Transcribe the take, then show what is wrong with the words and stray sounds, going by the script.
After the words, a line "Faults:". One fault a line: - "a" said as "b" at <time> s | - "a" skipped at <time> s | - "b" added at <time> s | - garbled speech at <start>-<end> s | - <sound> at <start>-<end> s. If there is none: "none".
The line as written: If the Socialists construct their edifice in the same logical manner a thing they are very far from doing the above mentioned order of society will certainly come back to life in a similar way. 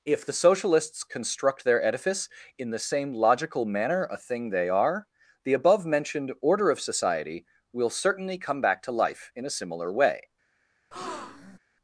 If the Socialists construct their edifice in the same logical manner a thing they are the above mentioned order of society will certainly come back to life in a similar way.
Faults:
- "very far from doing" skipped at 5.0 s
- breath at 10.9-11.6 s